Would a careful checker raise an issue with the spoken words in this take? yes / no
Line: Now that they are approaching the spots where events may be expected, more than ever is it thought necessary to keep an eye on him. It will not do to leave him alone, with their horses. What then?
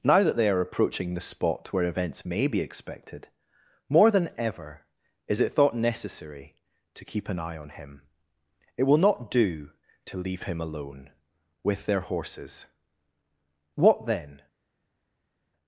yes